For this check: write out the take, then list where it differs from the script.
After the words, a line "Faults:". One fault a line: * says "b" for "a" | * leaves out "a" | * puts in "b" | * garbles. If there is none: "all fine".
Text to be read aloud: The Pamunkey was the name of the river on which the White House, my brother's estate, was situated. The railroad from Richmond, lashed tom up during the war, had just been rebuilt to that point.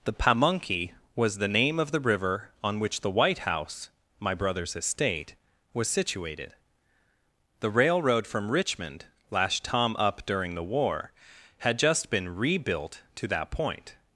The Pamunkey was the name of the river on which the White House, my brother's estate, was situated. The railroad from Richmond, lashed tom up during the war, had just been rebuilt to that point.
Faults:
all fine